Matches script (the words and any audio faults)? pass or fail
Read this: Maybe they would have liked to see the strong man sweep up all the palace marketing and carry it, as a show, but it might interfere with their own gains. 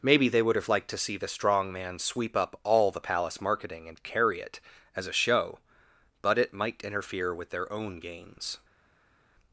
pass